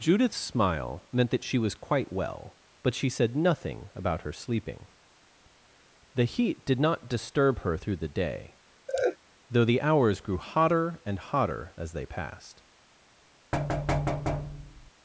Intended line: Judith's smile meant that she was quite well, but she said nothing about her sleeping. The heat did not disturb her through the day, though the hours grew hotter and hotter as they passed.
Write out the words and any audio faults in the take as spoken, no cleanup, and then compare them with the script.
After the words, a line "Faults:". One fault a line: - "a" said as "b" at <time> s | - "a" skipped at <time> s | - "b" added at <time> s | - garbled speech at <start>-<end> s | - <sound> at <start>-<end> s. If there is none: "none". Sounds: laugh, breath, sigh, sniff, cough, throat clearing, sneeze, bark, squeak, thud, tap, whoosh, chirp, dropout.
Judith's smile meant that she was quite well, but she said nothing about her sleeping. The heat did not disturb her through the day, though the hours grew hotter and hotter as they passed.
Faults:
- laugh at 8.9-9.2 s
- thud at 13.5-14.9 s